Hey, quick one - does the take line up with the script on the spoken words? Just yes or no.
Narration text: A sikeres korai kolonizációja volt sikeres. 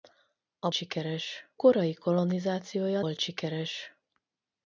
yes